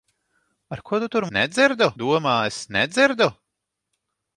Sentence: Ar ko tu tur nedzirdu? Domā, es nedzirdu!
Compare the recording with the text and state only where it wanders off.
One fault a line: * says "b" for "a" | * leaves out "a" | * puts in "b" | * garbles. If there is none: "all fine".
all fine